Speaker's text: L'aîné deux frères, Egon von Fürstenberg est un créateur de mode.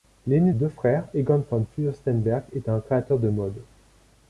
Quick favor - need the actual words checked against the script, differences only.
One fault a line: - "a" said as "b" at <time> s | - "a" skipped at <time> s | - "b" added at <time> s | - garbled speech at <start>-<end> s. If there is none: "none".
none